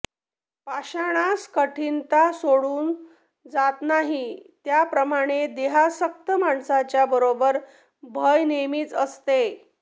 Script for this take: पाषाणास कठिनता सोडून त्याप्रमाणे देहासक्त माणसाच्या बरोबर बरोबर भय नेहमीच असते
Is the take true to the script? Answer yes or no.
no